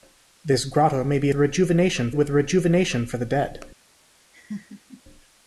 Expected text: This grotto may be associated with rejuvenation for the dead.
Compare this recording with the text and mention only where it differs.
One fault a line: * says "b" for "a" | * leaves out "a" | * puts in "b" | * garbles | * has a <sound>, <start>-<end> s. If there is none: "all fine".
* says "rejuvenation" for "associated"
* has a laugh, 4.3-5.0 s